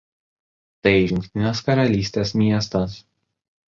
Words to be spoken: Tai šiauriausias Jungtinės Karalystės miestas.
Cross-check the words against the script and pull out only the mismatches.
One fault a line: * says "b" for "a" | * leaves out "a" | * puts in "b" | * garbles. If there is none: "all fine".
* leaves out "šiauriausias"